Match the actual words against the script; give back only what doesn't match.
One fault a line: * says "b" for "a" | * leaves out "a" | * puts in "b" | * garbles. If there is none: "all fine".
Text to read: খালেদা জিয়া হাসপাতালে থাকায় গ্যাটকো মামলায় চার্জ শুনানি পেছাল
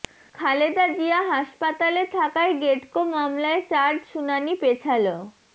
all fine